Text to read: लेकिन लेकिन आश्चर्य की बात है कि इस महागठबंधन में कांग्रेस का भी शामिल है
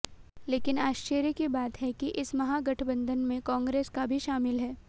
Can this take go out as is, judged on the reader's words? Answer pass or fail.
fail